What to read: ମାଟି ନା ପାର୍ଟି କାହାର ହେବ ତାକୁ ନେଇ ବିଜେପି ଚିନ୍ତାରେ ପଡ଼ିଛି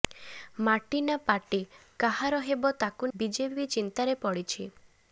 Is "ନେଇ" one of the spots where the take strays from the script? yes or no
yes